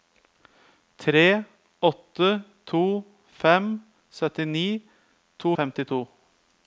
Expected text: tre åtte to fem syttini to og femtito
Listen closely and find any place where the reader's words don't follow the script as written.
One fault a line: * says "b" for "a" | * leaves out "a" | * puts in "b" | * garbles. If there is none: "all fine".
all fine